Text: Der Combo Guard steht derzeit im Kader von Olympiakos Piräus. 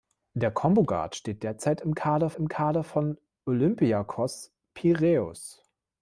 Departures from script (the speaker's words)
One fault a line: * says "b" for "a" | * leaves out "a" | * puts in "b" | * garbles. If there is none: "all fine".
* puts in "im Kader"